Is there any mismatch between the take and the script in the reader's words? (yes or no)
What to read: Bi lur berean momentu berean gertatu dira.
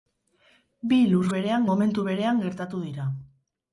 no